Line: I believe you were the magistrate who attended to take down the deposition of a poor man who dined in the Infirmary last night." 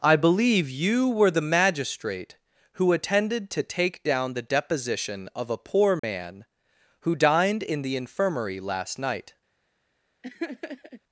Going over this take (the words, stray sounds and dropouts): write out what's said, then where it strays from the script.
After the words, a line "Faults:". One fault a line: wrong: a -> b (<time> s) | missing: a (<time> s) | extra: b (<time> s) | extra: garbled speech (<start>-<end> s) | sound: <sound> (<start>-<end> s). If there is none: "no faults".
I believe you were the magistrate who attended to take down the deposition of a poor man who dined in the Infirmary last night."
Faults:
sound: dropout (6.0-6.0 s)
sound: laugh (10.2-11.0 s)